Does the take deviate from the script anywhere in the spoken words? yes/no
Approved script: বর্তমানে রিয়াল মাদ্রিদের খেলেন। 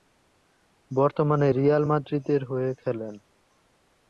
yes